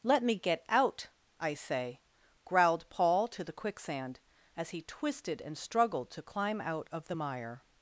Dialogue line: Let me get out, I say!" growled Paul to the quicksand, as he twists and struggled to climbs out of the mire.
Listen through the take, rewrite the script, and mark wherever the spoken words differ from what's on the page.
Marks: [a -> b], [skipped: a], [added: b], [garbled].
Let me get out, I say!" growled Paul to the quicksand, as he [twists -> twisted] and struggled to [climbs -> climb] out of the mire.